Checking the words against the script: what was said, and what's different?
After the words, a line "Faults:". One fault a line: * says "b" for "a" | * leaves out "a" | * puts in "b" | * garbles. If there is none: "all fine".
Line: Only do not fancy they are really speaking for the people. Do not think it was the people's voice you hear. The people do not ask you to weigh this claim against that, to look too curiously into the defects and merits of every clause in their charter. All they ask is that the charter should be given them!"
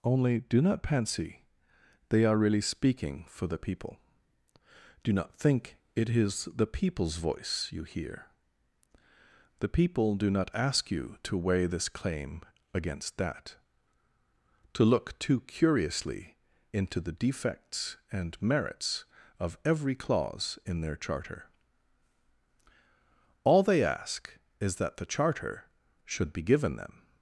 Only do not fancy they are really speaking for the people. Do not think it is the people's voice you hear. The people do not ask you to weigh this claim against that, to look too curiously into the defects and merits of every clause in their charter. All they ask is that the charter should be given them!"
Faults:
* says "is" for "was"